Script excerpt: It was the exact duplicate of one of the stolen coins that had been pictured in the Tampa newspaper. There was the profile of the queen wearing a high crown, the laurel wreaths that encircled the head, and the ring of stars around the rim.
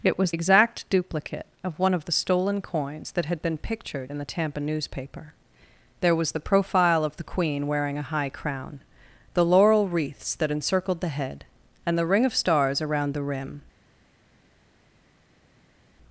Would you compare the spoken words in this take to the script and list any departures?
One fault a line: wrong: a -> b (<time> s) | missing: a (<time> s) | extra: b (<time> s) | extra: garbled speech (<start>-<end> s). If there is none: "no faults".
missing: the (0.3 s)